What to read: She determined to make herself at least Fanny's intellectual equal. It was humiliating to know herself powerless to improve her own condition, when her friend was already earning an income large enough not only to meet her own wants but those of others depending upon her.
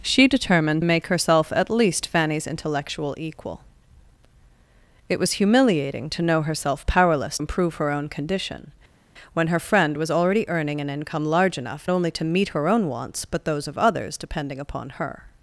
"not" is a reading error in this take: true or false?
true